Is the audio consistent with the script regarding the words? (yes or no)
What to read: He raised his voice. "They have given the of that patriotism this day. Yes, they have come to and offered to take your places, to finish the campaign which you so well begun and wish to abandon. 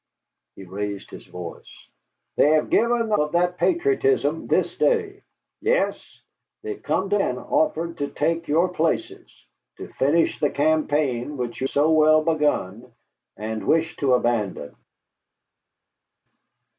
yes